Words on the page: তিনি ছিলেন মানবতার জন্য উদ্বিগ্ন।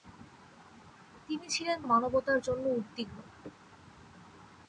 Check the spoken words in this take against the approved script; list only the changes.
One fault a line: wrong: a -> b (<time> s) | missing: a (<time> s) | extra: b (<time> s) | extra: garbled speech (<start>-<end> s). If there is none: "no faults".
no faults